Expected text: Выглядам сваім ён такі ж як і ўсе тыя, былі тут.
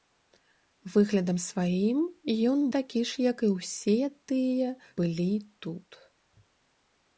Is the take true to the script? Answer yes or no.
yes